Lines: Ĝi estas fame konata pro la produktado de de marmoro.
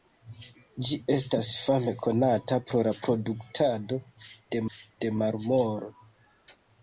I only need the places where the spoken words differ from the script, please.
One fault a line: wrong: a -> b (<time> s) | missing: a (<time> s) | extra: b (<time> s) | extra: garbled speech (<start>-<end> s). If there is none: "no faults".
no faults